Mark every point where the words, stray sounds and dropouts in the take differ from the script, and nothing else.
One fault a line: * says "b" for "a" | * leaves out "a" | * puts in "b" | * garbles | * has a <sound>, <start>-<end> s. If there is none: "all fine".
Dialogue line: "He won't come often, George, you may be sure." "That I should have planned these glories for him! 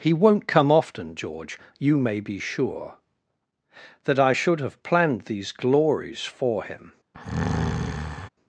* has a breath, 7.1-8.3 s